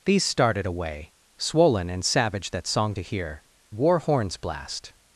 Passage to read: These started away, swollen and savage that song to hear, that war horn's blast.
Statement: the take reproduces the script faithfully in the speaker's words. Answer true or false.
false